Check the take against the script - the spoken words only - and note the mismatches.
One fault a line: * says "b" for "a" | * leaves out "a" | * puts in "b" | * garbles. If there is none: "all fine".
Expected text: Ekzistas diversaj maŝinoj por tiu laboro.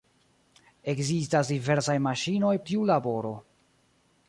* leaves out "por"